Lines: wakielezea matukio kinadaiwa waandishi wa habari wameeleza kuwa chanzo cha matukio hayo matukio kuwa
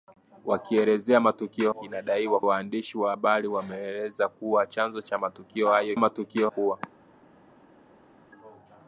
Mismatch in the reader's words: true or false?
false